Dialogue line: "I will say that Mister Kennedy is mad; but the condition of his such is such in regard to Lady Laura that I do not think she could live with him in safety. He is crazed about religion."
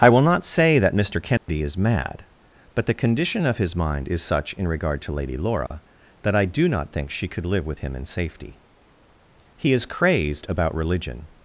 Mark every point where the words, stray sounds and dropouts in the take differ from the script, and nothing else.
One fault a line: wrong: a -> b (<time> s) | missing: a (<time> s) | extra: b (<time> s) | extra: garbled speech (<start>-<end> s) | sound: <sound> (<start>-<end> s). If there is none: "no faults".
extra: not (0.2 s)
sound: dropout (1.4-1.5 s)
wrong: such -> mind (3.8 s)
sound: dropout (5.7-5.7 s)